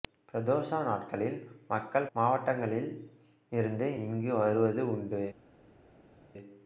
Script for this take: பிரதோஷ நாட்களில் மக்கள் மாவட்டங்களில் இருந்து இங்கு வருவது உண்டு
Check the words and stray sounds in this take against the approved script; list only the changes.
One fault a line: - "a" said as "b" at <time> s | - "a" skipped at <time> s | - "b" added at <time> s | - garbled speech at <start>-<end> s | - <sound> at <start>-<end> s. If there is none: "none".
none